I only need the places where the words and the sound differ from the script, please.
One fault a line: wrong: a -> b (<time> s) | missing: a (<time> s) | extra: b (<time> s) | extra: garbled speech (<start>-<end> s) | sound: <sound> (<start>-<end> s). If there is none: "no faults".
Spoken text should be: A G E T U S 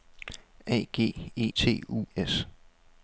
no faults